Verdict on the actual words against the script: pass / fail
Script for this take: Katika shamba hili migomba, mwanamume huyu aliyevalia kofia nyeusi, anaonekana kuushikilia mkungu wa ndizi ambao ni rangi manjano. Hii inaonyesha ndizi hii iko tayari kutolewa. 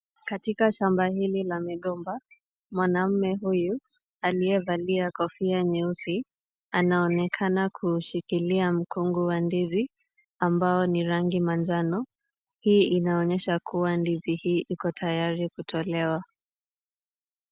fail